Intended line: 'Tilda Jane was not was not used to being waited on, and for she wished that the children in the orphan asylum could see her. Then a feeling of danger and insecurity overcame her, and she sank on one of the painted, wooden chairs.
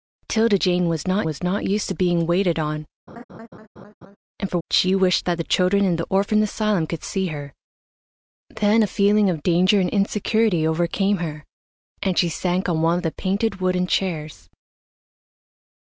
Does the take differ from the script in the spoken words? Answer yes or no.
no